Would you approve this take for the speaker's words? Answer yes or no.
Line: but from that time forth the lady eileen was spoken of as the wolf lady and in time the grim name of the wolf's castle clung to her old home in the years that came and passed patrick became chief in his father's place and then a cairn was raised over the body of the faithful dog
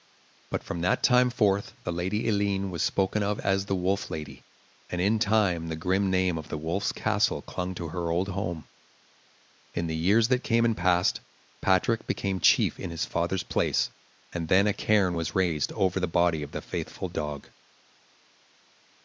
yes